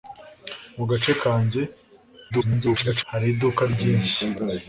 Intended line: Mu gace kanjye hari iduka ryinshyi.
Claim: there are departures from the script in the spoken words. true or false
true